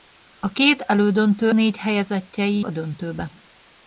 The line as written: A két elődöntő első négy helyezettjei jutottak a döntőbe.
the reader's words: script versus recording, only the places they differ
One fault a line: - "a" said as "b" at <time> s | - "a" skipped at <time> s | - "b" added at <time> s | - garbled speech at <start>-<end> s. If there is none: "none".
- "első" skipped at 1.5 s
- "jutottak" skipped at 2.6 s